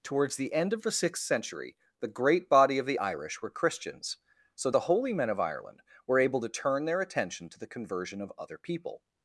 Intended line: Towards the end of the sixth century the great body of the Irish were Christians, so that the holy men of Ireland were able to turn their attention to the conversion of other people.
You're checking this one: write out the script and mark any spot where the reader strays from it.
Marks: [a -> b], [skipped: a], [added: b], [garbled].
Towards the end of the sixth century the great body of the Irish were Christians, so [skipped: that] the holy men of Ireland were able to turn their attention to the conversion of other people.